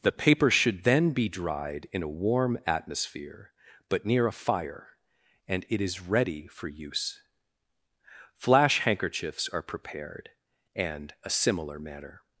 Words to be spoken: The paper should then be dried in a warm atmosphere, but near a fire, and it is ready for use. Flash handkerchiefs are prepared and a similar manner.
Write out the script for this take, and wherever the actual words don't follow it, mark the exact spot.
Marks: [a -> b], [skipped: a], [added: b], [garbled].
The paper should then be dried in a warm atmosphere, but near a fire, and it is ready for use. Flash handkerchiefs are prepared and a similar manner.